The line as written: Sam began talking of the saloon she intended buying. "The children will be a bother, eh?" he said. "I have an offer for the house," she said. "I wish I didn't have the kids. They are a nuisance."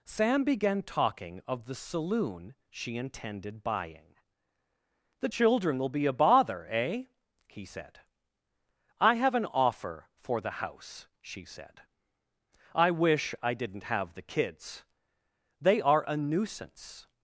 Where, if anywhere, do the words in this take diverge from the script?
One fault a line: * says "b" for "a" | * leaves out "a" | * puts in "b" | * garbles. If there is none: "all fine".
all fine